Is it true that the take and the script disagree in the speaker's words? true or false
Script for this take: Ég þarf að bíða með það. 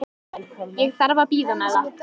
false